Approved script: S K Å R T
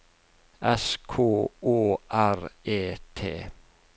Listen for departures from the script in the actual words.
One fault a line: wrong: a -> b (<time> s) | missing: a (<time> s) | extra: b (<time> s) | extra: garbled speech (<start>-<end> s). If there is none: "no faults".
extra: E (2.6 s)